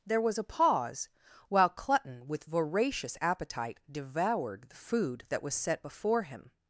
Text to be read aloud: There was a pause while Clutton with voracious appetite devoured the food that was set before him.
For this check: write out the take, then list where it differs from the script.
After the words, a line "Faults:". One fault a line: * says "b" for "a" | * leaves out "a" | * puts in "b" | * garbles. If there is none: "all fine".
There was a pause while Clutton with voracious appetite devoured the food that was set before him.
Faults:
all fine